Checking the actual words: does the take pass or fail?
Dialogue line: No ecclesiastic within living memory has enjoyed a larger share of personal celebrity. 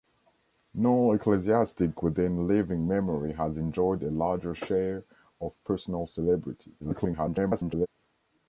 fail